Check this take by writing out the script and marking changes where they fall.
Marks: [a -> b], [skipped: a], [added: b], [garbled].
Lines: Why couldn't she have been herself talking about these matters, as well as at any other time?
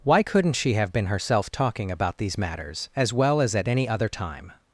Why couldn't she have been herself talking about these matters, as well as at any other time?